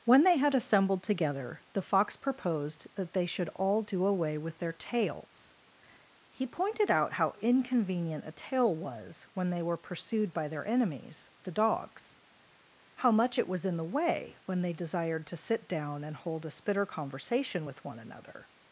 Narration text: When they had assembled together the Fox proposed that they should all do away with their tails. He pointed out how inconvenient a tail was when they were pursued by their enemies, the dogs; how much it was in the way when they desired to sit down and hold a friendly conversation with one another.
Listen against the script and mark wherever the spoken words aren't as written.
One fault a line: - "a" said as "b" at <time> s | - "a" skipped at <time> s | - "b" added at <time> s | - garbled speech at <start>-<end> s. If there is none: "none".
- "friendly" said as "spitter" at 16.5 s